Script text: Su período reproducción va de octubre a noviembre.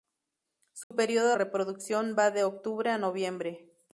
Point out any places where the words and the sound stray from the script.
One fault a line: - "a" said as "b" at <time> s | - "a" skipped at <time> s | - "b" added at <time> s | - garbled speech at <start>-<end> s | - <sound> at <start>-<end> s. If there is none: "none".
- dropout at 0.8-0.9 s